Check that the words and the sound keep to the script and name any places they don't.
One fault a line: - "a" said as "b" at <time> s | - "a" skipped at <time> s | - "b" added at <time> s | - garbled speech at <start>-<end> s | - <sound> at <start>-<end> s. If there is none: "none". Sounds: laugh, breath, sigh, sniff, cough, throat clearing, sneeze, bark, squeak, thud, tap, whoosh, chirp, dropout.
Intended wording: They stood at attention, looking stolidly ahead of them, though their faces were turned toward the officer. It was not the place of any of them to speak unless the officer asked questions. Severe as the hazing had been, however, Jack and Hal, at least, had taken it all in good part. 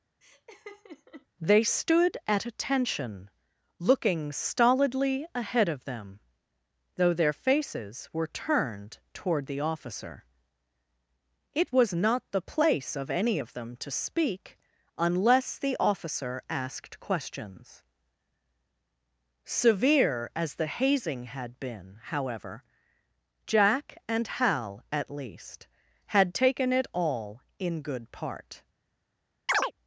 - laugh at 0.2-1.3 s
- chirp at 29.5-29.7 s